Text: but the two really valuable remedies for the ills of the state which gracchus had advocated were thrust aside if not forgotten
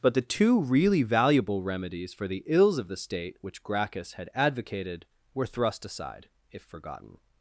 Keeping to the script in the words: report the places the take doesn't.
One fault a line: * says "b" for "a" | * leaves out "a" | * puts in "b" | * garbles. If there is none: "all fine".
* leaves out "not"